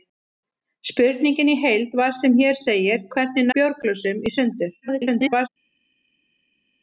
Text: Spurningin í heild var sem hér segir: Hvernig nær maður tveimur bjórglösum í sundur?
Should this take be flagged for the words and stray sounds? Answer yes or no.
yes